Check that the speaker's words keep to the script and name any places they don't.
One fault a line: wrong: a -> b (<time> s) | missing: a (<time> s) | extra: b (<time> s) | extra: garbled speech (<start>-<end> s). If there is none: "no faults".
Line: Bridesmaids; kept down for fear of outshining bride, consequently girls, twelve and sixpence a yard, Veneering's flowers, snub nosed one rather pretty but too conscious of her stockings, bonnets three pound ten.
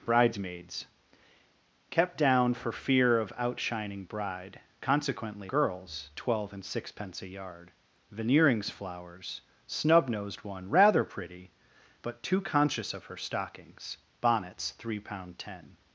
no faults